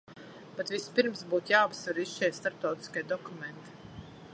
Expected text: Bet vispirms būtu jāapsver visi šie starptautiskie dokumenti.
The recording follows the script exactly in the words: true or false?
true